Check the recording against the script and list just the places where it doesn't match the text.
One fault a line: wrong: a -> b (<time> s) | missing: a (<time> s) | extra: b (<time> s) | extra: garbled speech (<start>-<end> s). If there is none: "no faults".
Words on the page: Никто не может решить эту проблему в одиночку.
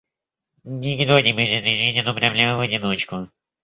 no faults